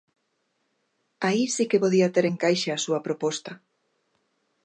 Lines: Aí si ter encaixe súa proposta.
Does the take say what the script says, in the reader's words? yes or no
no